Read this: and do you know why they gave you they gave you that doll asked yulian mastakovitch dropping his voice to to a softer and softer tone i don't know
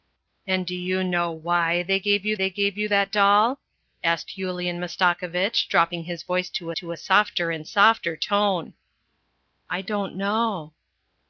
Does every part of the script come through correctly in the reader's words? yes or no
yes